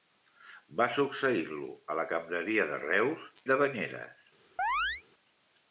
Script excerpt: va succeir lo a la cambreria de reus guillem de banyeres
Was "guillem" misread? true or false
true